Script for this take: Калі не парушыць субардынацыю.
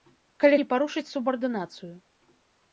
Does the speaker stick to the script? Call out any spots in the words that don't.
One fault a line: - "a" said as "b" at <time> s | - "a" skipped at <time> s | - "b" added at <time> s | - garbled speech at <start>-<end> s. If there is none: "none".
none